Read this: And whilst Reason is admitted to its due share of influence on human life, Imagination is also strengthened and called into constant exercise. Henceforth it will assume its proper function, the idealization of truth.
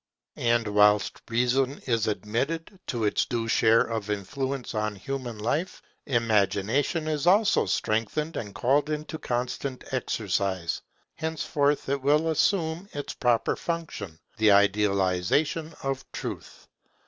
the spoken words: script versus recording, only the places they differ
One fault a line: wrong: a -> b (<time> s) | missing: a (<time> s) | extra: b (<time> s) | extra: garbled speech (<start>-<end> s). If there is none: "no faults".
no faults